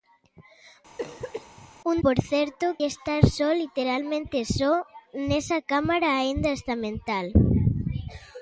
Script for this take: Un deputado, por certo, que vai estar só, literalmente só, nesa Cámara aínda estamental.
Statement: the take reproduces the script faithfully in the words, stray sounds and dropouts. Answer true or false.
false